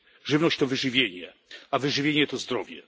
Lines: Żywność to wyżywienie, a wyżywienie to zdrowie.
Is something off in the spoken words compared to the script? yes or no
no